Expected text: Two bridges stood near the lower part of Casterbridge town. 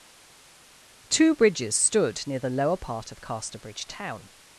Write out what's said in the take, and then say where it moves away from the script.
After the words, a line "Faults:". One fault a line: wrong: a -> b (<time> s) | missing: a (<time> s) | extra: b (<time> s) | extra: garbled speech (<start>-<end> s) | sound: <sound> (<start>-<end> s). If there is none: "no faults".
Two bridges stood near the lower part of Casterbridge town.
Faults:
no faults